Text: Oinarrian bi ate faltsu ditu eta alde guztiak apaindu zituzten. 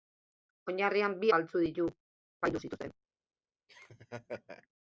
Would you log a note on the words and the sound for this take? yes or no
yes